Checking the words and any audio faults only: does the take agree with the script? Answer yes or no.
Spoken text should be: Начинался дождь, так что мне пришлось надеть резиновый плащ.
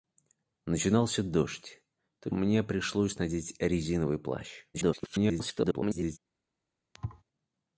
no